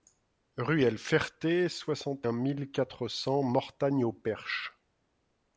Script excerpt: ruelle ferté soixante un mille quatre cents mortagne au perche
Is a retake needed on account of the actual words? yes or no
no